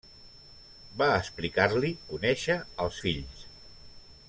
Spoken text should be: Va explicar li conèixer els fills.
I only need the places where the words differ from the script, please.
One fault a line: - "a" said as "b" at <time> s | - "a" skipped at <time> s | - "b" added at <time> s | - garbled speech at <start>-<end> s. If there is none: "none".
none